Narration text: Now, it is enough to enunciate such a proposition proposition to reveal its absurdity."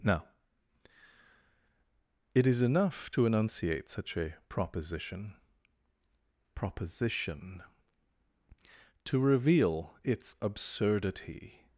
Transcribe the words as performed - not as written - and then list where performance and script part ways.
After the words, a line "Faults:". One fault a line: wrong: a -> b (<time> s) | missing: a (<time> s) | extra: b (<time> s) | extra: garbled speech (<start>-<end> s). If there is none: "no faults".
Now, it is enough to enunciate such a proposition proposition to reveal its absurdity."
Faults:
no faults